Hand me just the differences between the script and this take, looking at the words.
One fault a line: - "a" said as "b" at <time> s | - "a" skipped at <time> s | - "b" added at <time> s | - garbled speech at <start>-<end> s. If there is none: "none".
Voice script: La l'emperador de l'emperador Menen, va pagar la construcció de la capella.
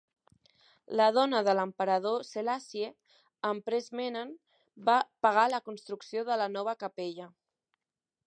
- "l'emperador" said as "dona" at 1.2 s
- "Selassie Empress" added at 2.3 s
- "nova" added at 6.5 s